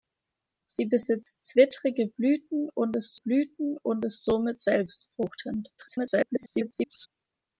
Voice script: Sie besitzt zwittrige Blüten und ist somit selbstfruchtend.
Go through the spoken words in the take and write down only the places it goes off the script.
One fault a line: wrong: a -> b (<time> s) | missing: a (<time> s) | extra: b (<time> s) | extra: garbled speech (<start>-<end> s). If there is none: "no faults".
extra: Blüten und ist (3.1 s)
extra: garbled speech (5.8-7.1 s)